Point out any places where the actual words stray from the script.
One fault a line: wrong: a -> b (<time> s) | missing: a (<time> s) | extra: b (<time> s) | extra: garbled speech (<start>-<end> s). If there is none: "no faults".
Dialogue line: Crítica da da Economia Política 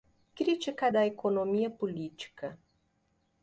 missing: da (1.0 s)